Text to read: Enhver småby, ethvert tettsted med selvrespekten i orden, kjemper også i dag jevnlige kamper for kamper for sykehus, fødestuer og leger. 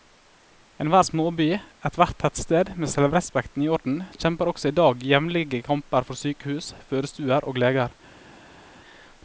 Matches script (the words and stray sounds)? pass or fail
fail